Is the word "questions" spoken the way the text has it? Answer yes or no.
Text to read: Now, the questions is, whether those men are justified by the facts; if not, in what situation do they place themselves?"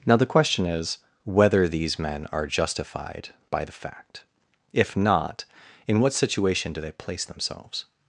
no